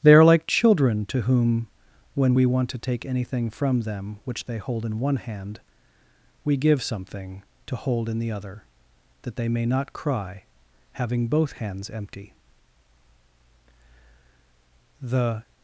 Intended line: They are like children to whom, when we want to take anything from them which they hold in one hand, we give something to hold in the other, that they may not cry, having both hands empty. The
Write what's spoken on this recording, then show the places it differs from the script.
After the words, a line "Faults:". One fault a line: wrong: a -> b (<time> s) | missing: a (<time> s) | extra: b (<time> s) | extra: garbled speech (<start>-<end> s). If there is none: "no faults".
They are like children to whom, when we want to take anything from them which they hold in one hand, we give something to hold in the other, that they may not cry, having both hands empty. The
Faults:
no faults